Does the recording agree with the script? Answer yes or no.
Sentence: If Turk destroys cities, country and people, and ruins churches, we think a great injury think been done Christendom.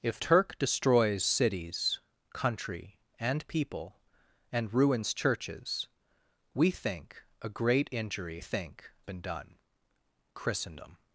yes